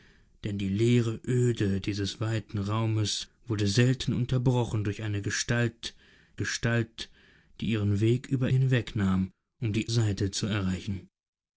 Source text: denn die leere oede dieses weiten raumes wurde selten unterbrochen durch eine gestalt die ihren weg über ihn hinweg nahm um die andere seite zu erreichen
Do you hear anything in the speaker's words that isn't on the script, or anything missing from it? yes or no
yes